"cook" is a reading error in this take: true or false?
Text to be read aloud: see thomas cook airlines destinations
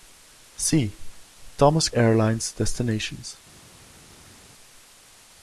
true